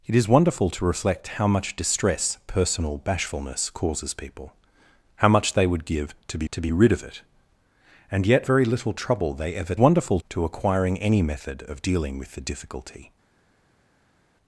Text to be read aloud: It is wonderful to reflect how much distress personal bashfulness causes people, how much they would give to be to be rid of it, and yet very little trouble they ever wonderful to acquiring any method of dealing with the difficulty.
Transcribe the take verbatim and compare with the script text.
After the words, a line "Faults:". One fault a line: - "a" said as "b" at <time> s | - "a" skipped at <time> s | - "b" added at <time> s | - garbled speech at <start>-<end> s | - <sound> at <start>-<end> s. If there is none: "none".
It is wonderful to reflect how much distress personal bashfulness causes people, how much they would give to be to be rid of it, and yet very little trouble they ever wonderful to acquiring any method of dealing with the difficulty.
Faults:
none